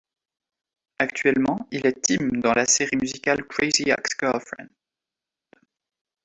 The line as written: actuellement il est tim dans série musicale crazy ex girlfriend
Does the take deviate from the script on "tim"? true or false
false